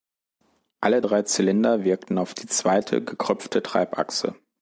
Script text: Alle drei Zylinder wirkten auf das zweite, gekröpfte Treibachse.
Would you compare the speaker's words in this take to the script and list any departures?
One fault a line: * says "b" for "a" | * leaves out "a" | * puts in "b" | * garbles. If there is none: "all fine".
* says "die" for "das"